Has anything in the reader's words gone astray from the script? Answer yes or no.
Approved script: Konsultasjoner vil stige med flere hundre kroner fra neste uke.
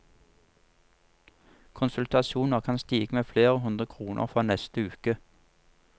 yes